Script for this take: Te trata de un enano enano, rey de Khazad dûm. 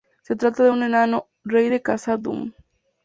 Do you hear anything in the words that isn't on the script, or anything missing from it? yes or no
yes